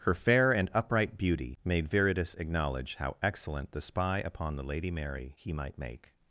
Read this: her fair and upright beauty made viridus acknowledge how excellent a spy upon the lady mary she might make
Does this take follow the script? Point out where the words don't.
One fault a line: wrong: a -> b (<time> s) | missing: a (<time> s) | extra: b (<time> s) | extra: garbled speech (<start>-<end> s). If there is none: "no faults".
wrong: a -> the (3.7 s)
wrong: she -> he (5.4 s)